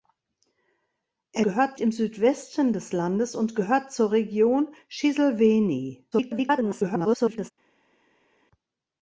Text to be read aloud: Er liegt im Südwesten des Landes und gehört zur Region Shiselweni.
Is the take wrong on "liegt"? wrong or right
wrong